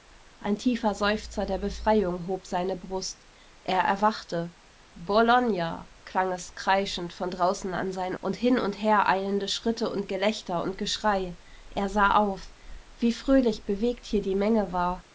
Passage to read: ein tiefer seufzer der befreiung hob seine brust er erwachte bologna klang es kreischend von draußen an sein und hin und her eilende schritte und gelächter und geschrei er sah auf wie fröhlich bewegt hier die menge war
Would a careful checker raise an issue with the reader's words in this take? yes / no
no